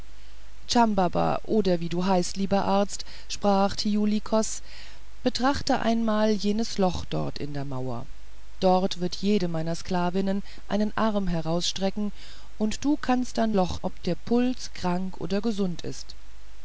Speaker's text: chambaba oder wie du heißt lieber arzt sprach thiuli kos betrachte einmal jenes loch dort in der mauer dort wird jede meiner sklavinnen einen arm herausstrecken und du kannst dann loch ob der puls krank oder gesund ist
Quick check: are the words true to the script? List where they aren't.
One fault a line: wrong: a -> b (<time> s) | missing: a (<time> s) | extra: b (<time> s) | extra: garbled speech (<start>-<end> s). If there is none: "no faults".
no faults